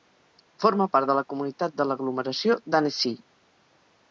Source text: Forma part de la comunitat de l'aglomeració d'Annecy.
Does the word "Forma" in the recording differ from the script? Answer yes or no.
no